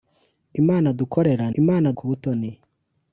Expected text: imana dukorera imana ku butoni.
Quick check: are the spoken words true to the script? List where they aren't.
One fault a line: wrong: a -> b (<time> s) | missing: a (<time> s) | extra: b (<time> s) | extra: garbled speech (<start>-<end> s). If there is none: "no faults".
no faults